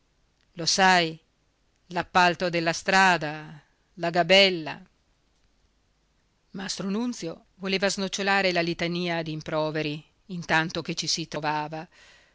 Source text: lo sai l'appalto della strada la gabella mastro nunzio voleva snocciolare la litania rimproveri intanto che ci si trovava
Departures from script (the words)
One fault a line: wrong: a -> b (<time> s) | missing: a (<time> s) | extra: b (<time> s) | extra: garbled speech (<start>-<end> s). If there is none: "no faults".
no faults